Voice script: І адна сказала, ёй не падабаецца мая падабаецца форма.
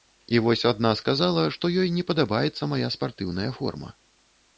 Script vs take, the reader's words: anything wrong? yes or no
yes